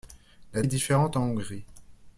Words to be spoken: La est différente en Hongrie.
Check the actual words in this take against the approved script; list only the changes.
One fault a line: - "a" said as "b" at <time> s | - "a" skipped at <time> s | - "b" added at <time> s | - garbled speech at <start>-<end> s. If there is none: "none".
none